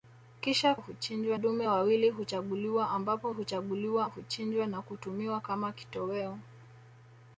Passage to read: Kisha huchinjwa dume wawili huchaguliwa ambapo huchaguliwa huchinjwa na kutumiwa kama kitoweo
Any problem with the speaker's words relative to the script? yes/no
no